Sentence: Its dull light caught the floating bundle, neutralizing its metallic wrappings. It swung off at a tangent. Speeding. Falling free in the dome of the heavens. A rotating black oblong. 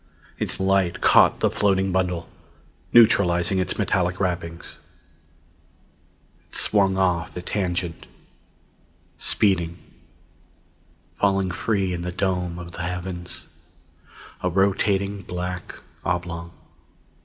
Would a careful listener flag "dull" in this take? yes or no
yes